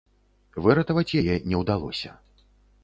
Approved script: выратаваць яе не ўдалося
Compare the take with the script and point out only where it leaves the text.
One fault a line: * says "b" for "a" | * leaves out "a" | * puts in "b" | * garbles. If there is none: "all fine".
all fine